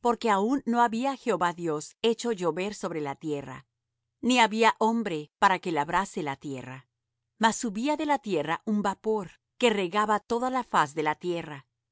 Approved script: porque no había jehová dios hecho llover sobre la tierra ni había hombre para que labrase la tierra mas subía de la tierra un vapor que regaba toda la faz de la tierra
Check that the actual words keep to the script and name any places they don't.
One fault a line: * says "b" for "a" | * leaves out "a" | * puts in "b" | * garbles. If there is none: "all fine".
* puts in "aun"